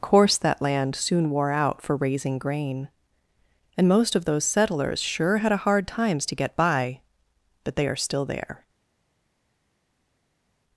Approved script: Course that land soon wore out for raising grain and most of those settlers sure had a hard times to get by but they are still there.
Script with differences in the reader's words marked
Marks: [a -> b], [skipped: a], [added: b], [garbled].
Course that land soon wore out for raising grain and most of those settlers sure had a hard times to get by but they are still there.